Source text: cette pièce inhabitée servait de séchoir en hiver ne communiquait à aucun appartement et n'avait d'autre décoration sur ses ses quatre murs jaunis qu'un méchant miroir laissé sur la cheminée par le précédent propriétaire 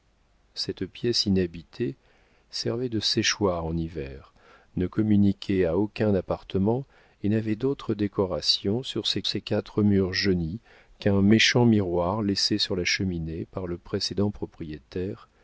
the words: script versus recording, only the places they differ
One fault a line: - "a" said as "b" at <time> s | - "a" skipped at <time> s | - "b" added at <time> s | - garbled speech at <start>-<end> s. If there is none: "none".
none